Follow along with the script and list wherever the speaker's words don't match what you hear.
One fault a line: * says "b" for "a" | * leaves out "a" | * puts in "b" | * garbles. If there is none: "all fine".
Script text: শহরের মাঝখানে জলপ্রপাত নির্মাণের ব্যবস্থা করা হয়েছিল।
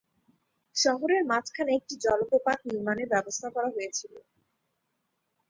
* puts in "একটি"